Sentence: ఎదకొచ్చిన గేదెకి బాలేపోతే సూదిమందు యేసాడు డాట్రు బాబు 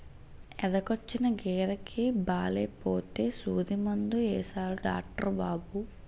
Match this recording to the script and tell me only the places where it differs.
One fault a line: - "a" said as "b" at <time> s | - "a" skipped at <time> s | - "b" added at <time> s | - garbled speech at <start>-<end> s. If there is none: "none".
none